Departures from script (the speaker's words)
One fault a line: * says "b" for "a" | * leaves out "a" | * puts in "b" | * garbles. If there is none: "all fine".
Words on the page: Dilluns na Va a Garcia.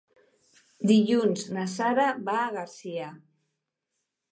* puts in "Sara"